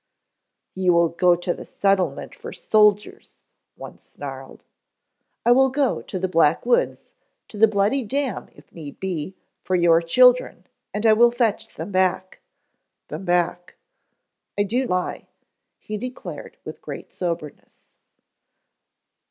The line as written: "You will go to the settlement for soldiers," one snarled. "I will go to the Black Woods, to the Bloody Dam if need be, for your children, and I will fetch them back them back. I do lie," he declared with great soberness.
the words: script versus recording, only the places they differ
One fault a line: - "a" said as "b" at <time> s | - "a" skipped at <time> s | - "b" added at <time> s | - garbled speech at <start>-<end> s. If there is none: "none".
none